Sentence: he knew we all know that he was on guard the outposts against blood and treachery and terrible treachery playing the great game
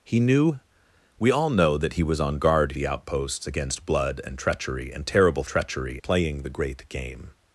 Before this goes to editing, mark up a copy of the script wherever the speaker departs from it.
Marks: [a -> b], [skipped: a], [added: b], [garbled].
he knew we all know that he was on guard the outposts against blood and treachery and terrible treachery playing the great game